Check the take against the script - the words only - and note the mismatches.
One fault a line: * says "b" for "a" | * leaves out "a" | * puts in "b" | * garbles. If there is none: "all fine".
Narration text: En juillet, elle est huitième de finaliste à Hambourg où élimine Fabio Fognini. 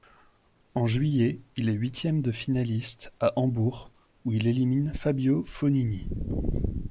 * says "il" for "elle"
* puts in "il"